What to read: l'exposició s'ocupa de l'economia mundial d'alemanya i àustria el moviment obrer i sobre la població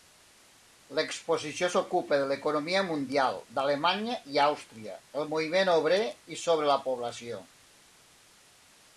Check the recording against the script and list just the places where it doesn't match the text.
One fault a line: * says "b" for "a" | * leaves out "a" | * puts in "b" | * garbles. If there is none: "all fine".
all fine